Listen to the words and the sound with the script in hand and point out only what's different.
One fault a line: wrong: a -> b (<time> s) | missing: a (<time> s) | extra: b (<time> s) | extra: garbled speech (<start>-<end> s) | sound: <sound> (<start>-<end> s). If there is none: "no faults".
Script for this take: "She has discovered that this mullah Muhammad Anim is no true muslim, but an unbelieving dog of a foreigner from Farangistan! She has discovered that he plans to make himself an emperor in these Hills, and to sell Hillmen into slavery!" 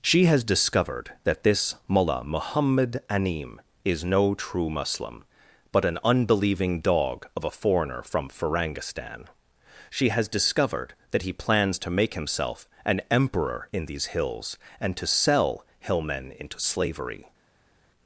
no faults